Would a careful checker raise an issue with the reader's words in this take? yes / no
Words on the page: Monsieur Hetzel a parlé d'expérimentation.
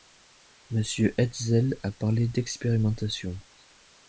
no